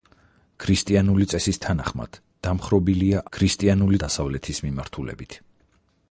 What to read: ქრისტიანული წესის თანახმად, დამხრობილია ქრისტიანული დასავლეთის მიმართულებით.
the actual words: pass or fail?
pass